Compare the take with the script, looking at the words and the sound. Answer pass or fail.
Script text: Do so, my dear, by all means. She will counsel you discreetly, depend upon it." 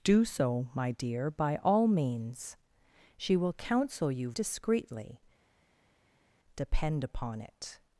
pass